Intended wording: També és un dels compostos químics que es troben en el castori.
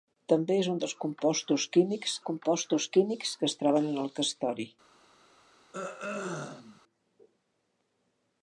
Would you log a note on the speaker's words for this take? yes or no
yes